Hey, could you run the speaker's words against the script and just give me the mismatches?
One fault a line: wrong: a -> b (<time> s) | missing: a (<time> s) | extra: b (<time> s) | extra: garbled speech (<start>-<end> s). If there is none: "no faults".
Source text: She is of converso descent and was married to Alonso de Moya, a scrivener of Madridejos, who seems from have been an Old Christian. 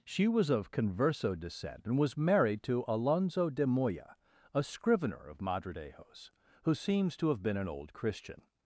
wrong: is -> was (0.3 s)
wrong: from -> to (7.2 s)